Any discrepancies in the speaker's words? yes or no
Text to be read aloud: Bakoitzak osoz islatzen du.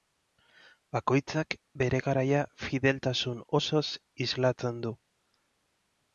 yes